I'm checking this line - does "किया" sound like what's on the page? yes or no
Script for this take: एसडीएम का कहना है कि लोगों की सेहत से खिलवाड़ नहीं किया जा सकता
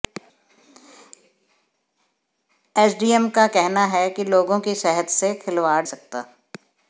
no